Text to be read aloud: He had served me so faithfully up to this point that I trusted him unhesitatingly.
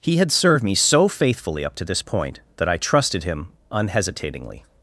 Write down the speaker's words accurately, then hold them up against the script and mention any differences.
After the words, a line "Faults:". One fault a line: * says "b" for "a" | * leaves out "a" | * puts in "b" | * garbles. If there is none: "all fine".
He had served me so faithfully up to this point that I trusted him unhesitatingly.
Faults:
all fine